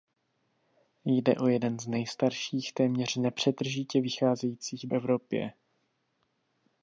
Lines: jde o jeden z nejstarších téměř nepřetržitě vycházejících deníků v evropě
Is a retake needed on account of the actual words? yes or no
yes